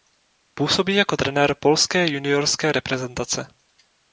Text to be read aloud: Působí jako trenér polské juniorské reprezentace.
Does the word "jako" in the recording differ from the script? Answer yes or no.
no